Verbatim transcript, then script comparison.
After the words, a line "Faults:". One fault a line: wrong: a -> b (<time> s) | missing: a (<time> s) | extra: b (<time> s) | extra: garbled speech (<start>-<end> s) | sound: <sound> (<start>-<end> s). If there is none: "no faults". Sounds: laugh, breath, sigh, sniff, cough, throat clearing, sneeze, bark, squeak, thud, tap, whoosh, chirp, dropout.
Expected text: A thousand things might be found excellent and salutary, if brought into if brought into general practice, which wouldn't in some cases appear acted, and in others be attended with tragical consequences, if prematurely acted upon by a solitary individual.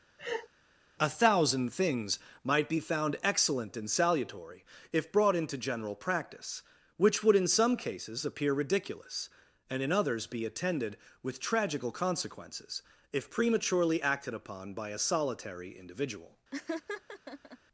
A thousand things might be found excellent and salutary, if brought into general practice, which would in some cases appear ridiculous, and in others be attended with tragical consequences, if prematurely acted upon by a solitary individual.
Faults:
sound: laugh (0.2-0.5 s)
missing: if brought into (5.6 s)
wrong: wouldn't -> would (7.2 s)
wrong: acted -> ridiculous (8.5 s)
sound: laugh (16.5-17.6 s)